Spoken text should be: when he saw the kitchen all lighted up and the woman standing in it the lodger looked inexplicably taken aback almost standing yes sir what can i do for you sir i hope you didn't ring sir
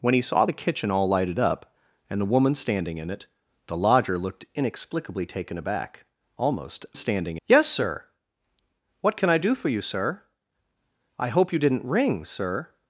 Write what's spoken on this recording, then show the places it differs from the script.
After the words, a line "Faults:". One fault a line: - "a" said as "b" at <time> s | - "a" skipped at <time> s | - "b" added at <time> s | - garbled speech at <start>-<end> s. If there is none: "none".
when he saw the kitchen all lighted up and the woman standing in it the lodger looked inexplicably taken aback almost standing yes sir what can i do for you sir i hope you didn't ring sir
Faults:
none